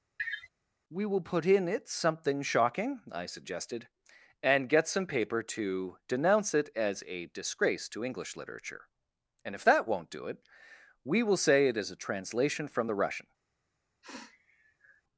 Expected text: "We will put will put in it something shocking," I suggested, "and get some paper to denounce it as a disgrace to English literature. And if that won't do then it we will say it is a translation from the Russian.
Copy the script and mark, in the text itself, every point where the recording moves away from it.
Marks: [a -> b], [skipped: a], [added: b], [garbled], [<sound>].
[sniff] "We will put [skipped: will put] in it something shocking," I suggested, "and get some paper to denounce it as a disgrace to English literature. And if that won't do [skipped: then] it we will say it is a translation from the Russian. [sniff]